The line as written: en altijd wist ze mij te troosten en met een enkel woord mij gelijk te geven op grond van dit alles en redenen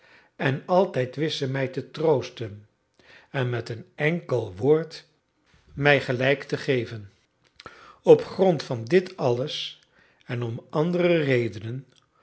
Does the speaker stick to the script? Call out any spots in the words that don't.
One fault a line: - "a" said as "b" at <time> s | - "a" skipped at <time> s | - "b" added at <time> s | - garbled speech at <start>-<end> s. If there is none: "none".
- "om andere" added at 10.4 s